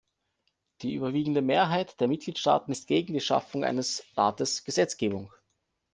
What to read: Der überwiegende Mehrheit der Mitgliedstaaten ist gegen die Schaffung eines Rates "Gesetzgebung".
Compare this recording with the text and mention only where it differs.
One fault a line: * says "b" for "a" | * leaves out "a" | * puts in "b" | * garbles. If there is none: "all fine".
* says "Die" for "Der"